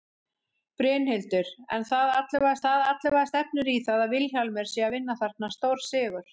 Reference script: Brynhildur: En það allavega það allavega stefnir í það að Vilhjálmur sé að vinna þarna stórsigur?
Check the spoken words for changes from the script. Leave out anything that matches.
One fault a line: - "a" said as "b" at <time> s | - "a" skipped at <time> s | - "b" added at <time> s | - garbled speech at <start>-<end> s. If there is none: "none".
none